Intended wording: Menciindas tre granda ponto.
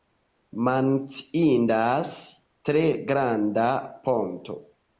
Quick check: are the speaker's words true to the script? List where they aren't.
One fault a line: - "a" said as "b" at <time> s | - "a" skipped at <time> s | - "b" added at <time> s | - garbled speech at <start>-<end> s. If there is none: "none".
none